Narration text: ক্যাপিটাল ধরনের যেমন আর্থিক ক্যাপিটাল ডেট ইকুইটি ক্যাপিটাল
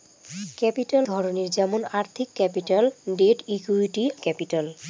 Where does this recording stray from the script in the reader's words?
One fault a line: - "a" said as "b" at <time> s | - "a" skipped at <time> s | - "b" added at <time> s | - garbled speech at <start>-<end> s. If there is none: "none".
none